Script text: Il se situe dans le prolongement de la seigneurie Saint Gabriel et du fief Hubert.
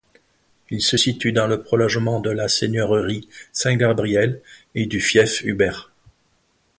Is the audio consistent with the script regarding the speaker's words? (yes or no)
yes